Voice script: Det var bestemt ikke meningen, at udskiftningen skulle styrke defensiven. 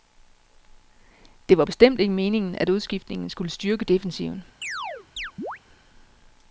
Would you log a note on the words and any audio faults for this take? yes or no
yes